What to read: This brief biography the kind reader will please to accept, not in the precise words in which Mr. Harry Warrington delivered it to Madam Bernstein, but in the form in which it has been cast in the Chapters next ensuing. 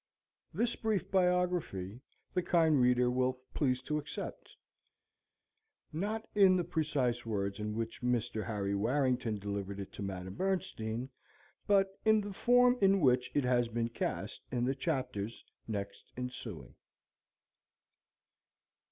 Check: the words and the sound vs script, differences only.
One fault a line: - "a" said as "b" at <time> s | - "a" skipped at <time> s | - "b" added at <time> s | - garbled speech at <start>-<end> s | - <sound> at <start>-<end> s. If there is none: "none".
none